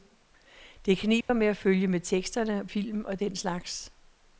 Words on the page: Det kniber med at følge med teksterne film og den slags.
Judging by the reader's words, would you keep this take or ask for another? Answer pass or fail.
pass